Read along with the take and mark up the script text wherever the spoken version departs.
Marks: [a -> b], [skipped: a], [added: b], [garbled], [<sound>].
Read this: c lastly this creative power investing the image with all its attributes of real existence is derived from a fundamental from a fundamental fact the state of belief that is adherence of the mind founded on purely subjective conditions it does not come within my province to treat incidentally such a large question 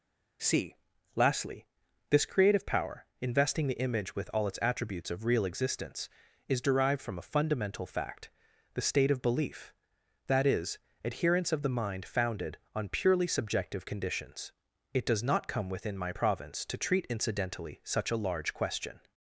c lastly this creative power investing the image with all its attributes of real existence is derived from a fundamental [skipped: from a fundamental] fact the state of belief that is adherence of the mind founded on purely subjective conditions it does not come within my province to treat incidentally such a large question